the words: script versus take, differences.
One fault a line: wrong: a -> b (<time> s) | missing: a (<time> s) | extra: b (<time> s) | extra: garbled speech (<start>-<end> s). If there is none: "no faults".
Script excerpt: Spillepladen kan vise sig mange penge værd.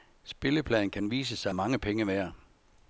no faults